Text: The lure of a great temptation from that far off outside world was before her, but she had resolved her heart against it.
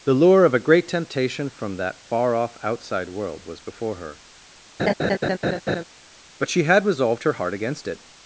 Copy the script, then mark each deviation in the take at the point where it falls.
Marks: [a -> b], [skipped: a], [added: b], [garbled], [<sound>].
The lure of a great temptation from that far off outside world was before her, [laugh] but she had resolved her heart against it.